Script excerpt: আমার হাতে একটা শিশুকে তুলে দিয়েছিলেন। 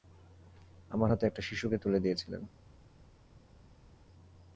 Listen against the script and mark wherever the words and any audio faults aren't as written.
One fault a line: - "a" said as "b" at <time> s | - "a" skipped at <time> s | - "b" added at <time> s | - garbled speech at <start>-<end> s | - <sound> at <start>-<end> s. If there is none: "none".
none